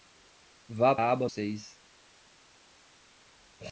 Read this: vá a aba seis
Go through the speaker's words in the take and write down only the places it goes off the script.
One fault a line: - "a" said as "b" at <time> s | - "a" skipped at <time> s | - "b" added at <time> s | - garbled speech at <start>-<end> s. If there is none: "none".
none